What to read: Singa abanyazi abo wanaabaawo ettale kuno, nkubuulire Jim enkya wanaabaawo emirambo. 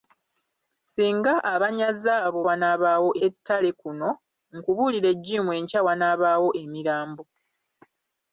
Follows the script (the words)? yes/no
yes